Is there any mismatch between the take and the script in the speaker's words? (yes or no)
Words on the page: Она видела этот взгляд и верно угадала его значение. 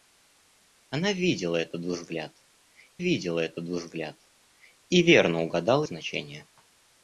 yes